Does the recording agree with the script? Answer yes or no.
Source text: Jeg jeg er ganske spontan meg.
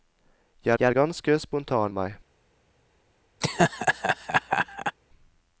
yes